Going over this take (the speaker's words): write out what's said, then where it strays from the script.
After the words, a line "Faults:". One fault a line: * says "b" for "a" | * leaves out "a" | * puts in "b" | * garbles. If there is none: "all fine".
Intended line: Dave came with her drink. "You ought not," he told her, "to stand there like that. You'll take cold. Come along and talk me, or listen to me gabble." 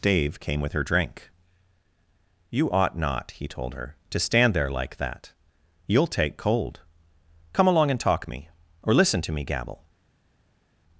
Dave came with her drink. "You ought not," he told her, "to stand there like that. You'll take cold. Come along and talk me, or listen to me gabble."
Faults:
all fine